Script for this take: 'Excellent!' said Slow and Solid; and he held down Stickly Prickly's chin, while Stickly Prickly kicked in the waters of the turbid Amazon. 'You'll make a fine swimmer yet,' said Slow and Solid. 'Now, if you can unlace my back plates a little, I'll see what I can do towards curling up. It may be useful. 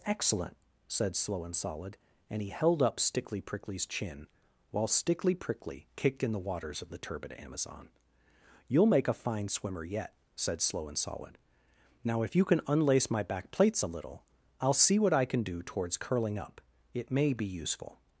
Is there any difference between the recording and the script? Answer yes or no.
yes